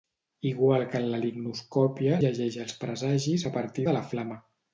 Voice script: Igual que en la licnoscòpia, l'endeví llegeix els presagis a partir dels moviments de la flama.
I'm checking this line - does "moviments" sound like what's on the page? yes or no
no